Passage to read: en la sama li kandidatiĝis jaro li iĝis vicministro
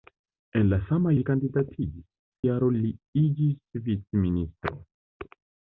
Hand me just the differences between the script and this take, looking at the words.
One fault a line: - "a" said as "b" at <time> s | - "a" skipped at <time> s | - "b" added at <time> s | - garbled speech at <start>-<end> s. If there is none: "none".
none